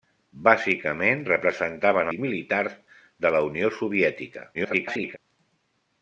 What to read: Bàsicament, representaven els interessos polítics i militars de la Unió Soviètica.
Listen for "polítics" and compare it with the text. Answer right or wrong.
wrong